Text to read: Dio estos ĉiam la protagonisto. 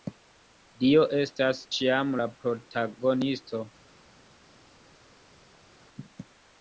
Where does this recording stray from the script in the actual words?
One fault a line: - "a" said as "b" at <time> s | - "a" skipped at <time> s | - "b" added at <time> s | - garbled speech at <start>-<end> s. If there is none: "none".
- "estos" said as "estas" at 1.2 s